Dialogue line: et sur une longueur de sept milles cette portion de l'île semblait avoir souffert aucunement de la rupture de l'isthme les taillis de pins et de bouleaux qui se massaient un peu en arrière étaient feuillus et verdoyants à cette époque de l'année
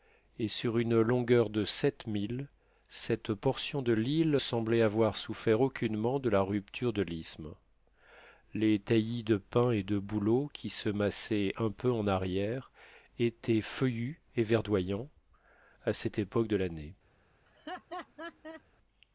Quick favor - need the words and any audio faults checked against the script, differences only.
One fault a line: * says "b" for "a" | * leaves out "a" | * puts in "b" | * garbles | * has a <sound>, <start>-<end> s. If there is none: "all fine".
* has a laugh, 17.5-18.6 s